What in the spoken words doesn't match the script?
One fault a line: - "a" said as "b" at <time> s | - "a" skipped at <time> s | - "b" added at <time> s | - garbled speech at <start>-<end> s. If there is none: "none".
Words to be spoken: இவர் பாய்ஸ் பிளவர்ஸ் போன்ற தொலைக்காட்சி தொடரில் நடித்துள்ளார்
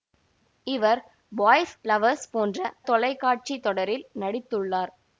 none